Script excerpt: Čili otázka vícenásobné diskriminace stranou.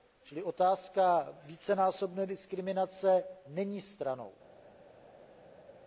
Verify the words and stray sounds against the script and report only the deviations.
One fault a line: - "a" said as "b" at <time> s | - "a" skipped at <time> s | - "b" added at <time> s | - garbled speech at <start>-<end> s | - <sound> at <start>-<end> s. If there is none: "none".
- "není" added at 3.5 s